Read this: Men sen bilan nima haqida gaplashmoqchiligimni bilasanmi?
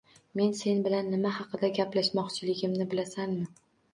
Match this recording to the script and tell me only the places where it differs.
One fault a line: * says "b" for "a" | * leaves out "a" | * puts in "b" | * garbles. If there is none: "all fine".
all fine